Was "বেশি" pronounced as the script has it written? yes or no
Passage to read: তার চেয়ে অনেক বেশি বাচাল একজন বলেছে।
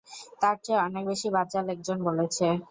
yes